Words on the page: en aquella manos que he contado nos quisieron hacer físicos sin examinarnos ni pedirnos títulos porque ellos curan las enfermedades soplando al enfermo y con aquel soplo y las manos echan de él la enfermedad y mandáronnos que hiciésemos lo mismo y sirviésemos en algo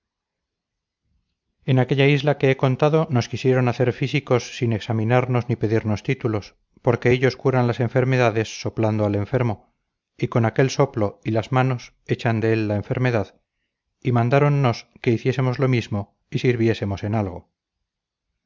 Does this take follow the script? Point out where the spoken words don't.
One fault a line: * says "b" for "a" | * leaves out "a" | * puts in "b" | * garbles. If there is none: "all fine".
* says "isla" for "manos"